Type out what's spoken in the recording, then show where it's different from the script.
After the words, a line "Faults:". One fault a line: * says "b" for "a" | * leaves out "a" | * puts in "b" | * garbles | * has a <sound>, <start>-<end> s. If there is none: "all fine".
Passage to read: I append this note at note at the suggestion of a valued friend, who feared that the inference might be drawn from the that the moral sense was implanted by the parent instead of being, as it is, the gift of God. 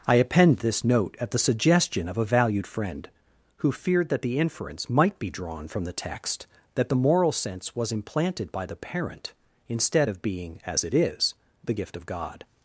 I append this note at the suggestion of a valued friend, who feared that the inference might be drawn from the text that the moral sense was implanted by the parent instead of being, as it is, the gift of God.
Faults:
* leaves out "note at"
* puts in "text"